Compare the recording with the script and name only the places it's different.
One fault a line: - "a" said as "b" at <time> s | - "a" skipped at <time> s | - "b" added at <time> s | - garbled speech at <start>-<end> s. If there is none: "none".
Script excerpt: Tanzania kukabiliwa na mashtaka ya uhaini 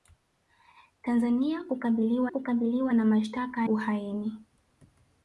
- "kukabiliwa" added at 2.3 s
- "ya" skipped at 3.7 s